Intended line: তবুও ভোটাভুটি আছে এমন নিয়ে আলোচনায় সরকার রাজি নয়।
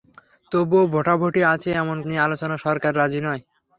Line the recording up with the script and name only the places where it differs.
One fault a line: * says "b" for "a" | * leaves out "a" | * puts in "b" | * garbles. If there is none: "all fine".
all fine